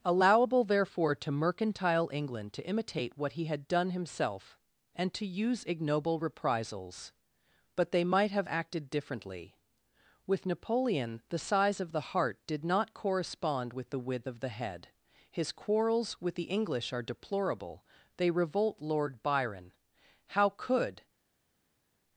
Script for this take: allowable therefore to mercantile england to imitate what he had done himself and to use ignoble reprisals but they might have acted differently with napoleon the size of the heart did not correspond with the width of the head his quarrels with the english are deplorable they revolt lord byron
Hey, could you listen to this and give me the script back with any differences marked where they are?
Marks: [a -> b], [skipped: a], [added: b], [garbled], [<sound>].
allowable therefore to mercantile england to imitate what he had done himself and to use ignoble reprisals but they might have acted differently with napoleon the size of the heart did not correspond with the width of the head his quarrels with the english are deplorable they revolt lord byron [added: how could]